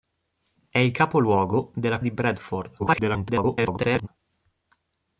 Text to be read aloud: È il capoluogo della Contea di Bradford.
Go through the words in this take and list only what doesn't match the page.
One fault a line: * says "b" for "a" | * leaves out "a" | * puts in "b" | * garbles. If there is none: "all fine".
* leaves out "Contea"
* garbles